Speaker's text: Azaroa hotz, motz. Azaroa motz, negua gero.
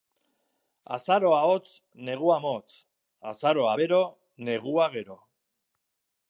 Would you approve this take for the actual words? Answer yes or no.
no